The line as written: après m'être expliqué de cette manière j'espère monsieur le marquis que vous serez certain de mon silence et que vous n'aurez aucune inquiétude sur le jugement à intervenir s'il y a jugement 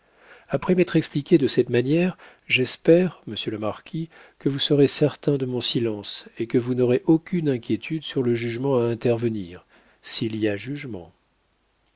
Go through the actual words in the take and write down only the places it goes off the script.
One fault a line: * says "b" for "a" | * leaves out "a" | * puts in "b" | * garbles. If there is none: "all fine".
all fine